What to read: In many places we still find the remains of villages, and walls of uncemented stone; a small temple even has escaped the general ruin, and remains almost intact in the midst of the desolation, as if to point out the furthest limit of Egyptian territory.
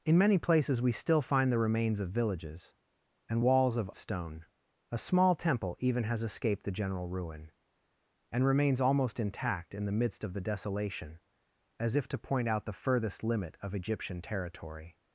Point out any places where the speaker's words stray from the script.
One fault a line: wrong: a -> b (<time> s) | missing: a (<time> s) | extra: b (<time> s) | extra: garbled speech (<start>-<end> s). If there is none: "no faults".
missing: uncemented (3.9 s)